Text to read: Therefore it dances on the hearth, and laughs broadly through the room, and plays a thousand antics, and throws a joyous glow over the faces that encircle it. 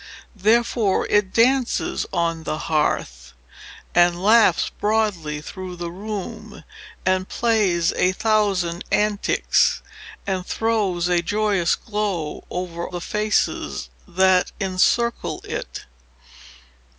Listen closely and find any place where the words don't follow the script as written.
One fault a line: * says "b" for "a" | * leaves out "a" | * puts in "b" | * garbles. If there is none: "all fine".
all fine